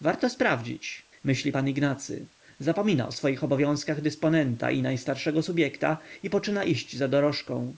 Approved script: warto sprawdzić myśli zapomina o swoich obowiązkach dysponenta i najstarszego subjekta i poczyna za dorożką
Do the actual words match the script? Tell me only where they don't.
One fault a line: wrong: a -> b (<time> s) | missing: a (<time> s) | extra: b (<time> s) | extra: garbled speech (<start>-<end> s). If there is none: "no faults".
extra: pan ignacy (1.5 s)
extra: iść (6.6 s)